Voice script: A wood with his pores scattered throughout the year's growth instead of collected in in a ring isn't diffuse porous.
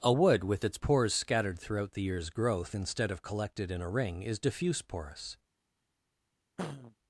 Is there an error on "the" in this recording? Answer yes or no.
no